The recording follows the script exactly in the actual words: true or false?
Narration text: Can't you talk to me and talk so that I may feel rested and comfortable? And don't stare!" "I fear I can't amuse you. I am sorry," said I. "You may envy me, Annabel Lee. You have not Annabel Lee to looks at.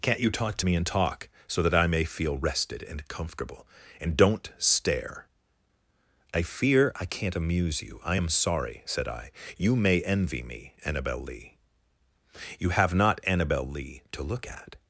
false